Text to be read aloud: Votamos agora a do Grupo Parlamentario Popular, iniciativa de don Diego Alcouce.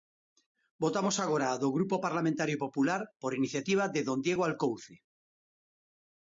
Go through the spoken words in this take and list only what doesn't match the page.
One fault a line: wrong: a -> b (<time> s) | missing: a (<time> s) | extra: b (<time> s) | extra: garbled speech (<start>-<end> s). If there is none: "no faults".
extra: por (3.2 s)